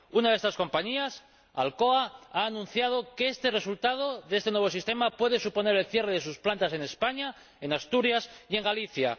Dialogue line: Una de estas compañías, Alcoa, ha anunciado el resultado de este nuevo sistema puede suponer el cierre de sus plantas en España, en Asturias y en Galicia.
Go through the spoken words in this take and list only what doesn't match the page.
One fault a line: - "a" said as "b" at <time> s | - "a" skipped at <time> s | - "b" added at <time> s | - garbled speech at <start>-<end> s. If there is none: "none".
- "que" added at 3.1 s